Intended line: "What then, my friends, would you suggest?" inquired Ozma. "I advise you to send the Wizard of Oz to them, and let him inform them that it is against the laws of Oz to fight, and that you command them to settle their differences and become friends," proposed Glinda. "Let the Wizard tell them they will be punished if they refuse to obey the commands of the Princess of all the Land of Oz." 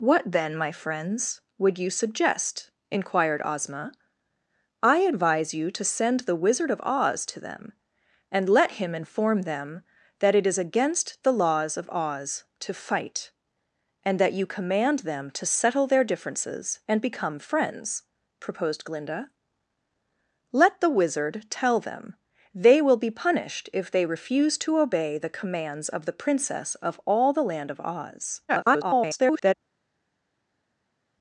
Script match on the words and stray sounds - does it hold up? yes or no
no